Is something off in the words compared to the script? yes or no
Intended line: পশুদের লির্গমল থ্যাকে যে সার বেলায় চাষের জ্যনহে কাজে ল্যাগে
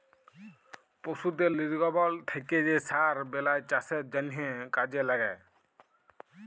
no